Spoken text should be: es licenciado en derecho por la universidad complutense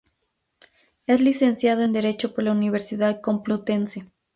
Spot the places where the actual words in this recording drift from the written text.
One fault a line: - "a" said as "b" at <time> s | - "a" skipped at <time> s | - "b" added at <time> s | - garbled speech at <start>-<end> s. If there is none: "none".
none